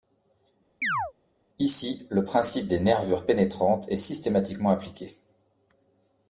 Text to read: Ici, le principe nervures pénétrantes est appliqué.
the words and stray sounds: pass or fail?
fail